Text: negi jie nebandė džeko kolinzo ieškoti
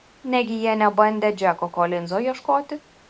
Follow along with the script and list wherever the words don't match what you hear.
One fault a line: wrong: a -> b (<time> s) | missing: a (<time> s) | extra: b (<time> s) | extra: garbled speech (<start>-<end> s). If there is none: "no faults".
no faults